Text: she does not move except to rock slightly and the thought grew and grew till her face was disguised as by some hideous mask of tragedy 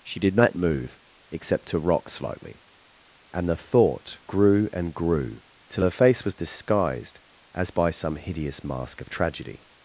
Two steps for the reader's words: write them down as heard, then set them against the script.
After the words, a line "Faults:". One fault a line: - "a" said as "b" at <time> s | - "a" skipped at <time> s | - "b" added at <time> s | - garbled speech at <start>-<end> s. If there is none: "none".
she did not move except to rock slightly and the thought grew and grew till her face was disguised as by some hideous mask of tragedy
Faults:
- "does" said as "did" at 0.2 s